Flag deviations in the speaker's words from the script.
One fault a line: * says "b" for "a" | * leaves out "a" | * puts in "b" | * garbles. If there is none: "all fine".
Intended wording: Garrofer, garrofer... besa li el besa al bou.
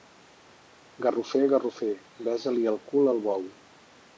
* says "cul" for "besa"